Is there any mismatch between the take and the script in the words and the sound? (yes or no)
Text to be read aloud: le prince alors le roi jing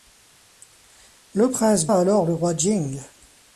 no